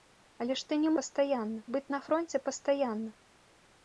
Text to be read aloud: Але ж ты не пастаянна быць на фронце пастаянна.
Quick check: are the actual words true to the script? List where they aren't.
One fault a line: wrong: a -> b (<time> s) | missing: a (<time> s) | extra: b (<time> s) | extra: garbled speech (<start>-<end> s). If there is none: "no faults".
no faults